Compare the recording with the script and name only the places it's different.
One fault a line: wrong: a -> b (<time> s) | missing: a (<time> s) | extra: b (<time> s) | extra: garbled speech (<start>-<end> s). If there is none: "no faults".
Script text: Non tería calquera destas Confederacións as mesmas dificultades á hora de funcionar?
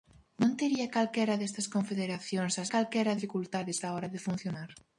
wrong: mesmas -> calquera (2.7 s)